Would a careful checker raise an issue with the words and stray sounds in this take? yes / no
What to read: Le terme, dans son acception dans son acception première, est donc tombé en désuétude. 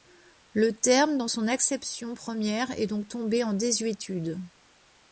yes